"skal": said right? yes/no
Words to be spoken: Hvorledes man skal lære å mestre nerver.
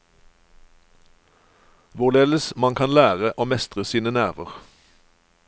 no